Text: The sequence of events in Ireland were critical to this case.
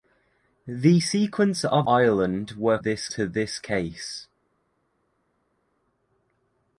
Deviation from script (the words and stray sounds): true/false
true